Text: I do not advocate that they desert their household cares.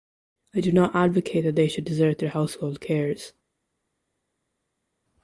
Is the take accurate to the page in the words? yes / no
no